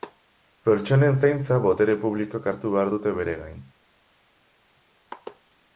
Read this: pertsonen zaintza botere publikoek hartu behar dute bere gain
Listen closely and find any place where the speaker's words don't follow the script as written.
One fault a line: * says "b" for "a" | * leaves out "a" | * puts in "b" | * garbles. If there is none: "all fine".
all fine